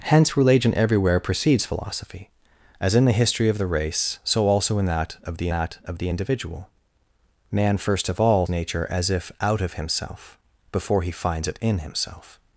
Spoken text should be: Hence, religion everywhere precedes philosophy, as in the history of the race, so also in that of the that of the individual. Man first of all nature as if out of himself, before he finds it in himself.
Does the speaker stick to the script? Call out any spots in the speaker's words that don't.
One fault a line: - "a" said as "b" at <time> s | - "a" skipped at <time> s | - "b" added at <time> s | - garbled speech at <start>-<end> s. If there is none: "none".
none